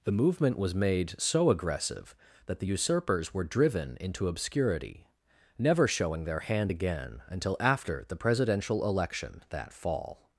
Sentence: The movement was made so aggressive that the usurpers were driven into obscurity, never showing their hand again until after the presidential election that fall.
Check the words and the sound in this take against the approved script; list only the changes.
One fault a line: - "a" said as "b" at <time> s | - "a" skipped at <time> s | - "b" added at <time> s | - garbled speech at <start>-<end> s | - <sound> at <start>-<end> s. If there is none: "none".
none